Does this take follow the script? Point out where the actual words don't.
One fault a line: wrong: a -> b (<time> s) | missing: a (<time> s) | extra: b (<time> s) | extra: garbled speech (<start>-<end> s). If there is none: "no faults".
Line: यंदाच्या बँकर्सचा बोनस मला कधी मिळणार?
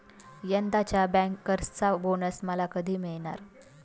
no faults